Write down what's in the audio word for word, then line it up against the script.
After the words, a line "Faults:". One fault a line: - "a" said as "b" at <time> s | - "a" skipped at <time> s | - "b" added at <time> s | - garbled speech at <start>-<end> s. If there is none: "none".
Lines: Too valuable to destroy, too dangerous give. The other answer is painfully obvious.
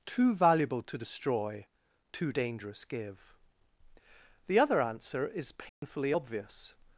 Too valuable to destroy, too dangerous give. The other answer is painfully obvious.
Faults:
none